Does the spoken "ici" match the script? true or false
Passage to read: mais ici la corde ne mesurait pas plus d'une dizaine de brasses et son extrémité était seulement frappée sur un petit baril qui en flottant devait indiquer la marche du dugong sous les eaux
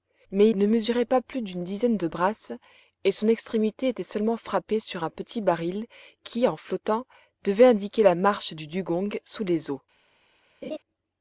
false